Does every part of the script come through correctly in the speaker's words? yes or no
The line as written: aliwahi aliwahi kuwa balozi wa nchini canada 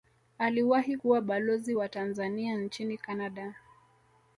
no